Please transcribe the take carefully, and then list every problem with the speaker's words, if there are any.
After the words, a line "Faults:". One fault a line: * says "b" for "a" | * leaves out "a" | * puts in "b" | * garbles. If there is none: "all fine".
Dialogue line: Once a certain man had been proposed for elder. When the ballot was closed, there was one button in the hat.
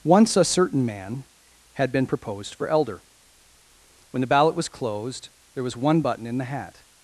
Once a certain man had been proposed for elder. When the ballot was closed, there was one button in the hat.
Faults:
all fine